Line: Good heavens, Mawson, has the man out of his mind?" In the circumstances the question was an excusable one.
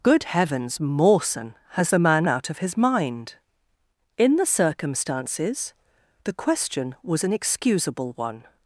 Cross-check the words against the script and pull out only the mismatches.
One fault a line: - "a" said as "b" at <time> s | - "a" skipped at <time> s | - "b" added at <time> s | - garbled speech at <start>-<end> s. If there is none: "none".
none